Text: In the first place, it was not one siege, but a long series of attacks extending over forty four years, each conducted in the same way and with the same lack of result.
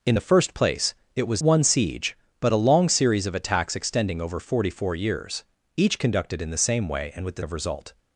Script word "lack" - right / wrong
wrong